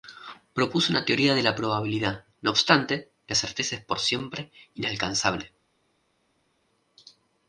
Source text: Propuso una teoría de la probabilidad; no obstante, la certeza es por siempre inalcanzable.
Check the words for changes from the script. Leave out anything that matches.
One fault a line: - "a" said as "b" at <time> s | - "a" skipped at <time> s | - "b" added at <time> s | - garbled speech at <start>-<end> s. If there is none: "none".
none